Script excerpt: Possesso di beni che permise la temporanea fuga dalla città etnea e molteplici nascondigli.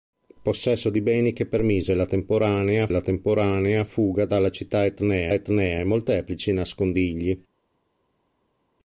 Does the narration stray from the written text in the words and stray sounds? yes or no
yes